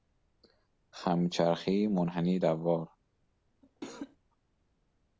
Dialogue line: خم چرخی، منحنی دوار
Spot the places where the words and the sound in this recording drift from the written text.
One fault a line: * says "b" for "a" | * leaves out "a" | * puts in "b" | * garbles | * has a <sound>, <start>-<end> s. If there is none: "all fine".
* has a cough, 3.6-4.2 s